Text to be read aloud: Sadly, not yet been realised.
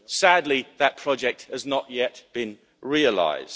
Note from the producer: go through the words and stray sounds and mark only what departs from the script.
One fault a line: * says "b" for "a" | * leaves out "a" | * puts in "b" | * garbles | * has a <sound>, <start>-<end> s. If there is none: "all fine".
* puts in "that project has"